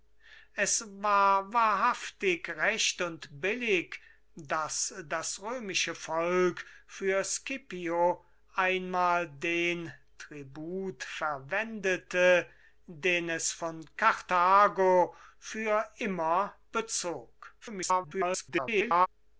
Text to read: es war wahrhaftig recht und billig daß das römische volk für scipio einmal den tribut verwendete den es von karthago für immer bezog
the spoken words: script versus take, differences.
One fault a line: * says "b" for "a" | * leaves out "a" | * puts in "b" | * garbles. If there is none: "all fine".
* garbles